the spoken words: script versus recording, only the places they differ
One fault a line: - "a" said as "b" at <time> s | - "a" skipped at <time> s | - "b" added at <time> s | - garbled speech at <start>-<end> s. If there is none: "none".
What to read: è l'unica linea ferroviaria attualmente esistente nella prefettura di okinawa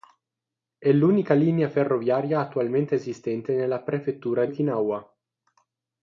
- "di" skipped at 4.5 s